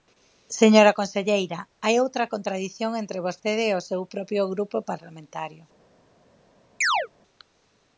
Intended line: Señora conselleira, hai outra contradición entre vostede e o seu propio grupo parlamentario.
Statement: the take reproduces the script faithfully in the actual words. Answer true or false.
true